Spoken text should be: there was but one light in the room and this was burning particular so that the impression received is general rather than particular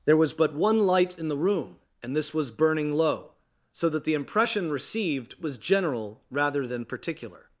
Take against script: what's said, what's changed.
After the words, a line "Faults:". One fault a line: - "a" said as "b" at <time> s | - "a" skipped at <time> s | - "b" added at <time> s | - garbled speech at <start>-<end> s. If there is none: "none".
there was but one light in the room and this was burning low so that the impression received was general rather than particular
Faults:
- "particular" said as "low" at 2.9 s
- "is" said as "was" at 5.4 s